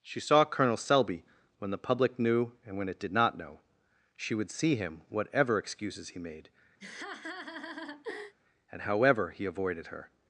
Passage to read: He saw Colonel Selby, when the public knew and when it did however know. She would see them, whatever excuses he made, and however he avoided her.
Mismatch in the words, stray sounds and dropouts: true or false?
true